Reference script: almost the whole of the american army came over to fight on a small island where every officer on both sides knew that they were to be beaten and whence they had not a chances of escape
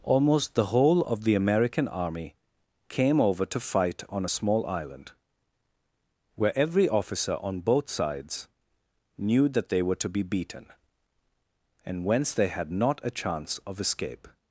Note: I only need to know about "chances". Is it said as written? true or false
false